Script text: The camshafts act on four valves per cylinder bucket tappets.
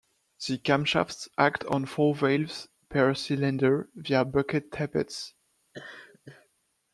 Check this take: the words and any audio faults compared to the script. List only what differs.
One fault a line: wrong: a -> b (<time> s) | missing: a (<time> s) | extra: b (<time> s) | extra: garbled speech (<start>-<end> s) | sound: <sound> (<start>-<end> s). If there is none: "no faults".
extra: via (4.0 s)
sound: laugh (5.7-6.5 s)